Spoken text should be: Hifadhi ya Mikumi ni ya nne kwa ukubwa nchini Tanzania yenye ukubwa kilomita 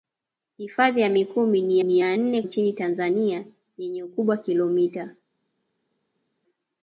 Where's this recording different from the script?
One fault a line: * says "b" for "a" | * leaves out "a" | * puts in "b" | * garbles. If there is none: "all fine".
* puts in "ni"
* leaves out "kwa ukubwa"